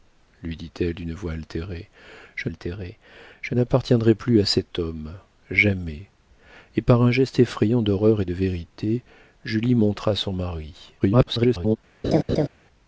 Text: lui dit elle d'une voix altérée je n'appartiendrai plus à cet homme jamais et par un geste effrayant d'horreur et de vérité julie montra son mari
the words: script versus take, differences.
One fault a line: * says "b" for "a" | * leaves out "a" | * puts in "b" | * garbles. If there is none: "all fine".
* puts in "altérée je"
* garbles